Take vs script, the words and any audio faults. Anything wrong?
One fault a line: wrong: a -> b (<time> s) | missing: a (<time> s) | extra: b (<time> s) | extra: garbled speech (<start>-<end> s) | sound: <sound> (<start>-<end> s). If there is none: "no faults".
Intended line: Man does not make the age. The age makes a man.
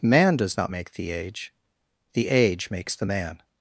wrong: a -> the (2.9 s)